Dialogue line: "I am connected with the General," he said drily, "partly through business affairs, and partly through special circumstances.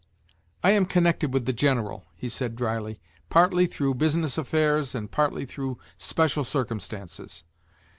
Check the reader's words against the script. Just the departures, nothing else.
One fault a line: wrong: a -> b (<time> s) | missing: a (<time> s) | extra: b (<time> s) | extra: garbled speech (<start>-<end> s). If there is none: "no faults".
no faults